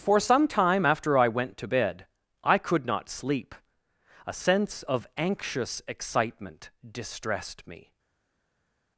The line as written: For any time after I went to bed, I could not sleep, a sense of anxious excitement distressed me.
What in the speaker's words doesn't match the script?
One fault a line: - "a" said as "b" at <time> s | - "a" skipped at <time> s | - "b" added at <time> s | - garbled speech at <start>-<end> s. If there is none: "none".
- "any" said as "some" at 0.2 s